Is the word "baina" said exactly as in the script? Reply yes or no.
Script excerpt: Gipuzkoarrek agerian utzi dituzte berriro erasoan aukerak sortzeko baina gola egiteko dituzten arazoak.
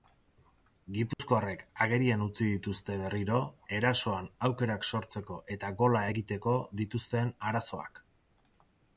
no